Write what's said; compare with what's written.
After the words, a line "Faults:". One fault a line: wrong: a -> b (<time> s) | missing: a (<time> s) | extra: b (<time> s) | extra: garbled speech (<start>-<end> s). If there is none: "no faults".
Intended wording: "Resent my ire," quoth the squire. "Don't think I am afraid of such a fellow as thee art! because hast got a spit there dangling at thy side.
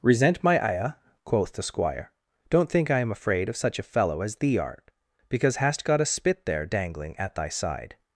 "Resent my ire," quoth the squire. "Don't think I am afraid of such a fellow as thee art! because hast got a spit there dangling at thy side.
Faults:
no faults